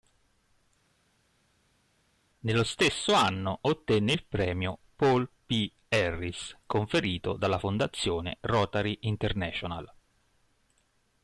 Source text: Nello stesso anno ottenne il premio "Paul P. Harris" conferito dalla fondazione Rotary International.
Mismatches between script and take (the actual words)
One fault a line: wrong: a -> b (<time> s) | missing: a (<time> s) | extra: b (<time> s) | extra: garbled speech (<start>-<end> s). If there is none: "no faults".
no faults